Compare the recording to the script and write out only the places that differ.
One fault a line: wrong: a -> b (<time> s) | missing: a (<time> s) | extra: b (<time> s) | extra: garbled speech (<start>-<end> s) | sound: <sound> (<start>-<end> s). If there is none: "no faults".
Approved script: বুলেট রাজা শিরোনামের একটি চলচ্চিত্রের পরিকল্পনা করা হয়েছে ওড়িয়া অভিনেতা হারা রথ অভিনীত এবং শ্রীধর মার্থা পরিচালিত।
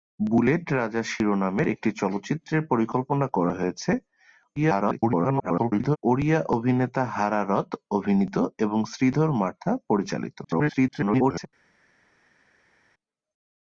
extra: garbled speech (4.6-6.0 s)
extra: garbled speech (10.4-11.5 s)